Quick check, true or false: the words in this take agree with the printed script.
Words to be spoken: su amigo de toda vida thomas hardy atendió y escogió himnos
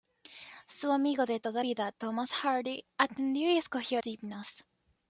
true